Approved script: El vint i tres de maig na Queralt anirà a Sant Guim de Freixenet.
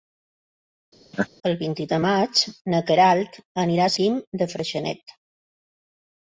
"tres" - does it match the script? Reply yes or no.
no